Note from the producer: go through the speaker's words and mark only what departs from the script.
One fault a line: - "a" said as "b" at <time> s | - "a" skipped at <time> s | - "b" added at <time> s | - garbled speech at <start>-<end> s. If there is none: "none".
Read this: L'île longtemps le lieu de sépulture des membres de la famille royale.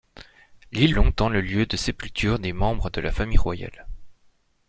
none